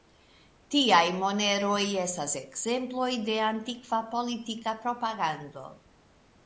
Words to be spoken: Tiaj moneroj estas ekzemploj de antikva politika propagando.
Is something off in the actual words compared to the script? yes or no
no